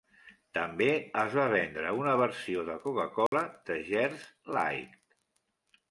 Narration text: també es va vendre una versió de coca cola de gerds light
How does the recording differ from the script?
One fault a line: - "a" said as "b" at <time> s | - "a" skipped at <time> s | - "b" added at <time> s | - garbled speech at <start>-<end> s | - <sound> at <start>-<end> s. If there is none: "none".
- dropout at 3.3-3.3 s